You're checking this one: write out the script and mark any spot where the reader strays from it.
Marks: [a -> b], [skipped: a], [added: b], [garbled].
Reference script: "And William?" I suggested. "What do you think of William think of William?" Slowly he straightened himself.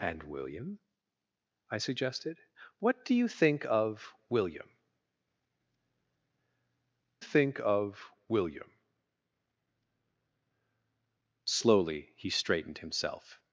"And William?" I suggested. "What do you think of William think of William?" Slowly he straightened himself.